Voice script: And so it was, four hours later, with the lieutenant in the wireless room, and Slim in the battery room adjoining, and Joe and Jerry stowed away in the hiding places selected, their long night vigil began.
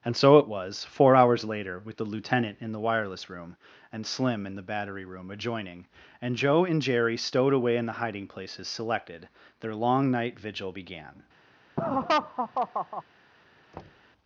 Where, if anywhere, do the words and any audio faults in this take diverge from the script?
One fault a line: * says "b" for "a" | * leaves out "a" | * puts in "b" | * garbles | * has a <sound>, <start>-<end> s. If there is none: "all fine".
* has a laugh, 11.8-13.0 s
* has a thud, 13.7-14.1 s